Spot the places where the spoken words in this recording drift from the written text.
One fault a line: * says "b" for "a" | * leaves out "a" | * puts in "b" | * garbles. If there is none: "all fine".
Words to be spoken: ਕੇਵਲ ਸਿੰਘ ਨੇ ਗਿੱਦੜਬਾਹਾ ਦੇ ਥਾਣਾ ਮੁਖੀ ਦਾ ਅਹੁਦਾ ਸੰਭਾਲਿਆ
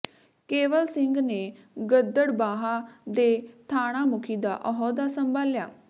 all fine